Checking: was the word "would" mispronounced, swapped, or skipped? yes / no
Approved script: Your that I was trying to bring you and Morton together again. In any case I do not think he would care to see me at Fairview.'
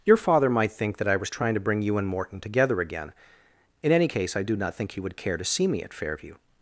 no